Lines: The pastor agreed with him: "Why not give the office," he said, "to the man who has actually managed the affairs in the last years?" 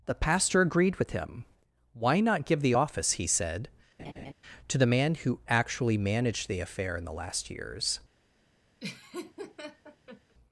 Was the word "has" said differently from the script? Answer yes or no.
yes